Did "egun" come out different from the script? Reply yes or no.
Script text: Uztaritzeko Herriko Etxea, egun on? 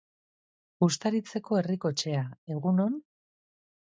no